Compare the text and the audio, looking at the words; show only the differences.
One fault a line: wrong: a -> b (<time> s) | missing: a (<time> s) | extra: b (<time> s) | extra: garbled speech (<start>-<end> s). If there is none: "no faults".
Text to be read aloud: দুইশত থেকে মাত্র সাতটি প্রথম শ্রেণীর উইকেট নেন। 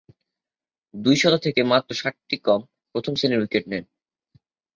extra: কম (2.4 s)